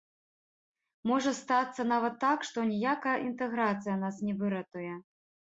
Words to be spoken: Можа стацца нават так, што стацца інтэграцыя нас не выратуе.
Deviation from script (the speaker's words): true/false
true